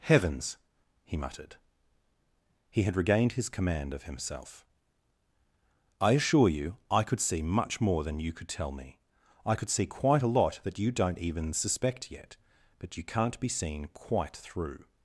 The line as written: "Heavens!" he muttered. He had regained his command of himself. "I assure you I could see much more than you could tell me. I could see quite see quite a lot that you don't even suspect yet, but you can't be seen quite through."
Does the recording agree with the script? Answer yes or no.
no